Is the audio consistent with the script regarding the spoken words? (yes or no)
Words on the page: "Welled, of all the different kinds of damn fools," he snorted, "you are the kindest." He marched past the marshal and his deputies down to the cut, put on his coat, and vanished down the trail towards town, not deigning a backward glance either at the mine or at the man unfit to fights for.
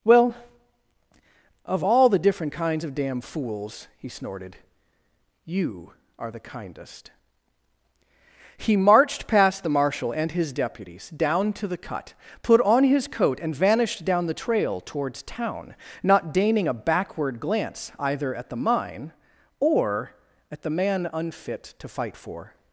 no